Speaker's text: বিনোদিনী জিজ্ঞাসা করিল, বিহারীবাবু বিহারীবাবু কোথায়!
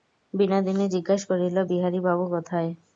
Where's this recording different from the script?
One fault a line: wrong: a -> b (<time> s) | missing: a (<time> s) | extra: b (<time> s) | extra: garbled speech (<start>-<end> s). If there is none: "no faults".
missing: বিহারীবাবু (2.2 s)